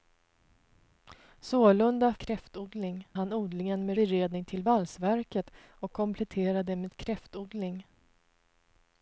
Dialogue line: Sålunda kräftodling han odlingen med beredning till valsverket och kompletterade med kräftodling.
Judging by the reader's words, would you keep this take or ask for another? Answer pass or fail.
pass